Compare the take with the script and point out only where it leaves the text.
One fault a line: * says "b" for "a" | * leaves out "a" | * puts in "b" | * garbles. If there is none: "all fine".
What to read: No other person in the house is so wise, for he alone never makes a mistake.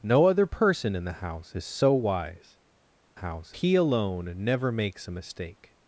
* says "house" for "for"